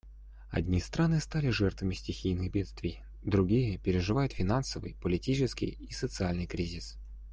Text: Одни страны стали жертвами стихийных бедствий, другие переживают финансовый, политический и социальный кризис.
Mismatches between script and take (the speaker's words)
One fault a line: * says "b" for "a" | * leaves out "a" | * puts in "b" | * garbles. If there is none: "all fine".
all fine